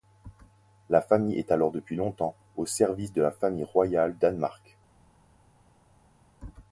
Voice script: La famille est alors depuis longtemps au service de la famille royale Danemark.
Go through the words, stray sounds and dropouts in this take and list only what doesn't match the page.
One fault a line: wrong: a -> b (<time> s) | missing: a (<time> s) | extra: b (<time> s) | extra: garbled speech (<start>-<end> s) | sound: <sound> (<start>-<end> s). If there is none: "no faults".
no faults